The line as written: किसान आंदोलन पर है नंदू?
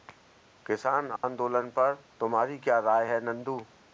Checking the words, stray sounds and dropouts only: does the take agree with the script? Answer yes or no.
no